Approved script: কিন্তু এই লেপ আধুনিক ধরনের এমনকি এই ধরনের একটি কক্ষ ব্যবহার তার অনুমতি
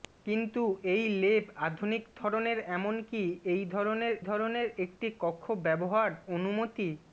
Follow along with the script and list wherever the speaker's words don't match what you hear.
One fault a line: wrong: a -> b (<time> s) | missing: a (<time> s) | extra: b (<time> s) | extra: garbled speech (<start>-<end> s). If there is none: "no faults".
extra: ধরনের (4.2 s)
missing: তার (6.1 s)